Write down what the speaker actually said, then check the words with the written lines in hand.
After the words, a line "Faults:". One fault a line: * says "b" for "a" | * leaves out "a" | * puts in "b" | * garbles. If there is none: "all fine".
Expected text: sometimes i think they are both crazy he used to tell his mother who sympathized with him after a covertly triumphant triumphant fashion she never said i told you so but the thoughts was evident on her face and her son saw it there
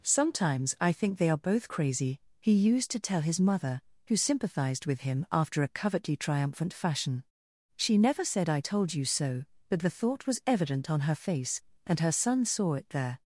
sometimes i think they are both crazy he used to tell his mother who sympathized with him after a covertly triumphant fashion she never said i told you so but the thought was evident on her face and her son saw it there
Faults:
* leaves out "triumphant"
* says "thought" for "thoughts"